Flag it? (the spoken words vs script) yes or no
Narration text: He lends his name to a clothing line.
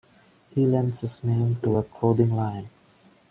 no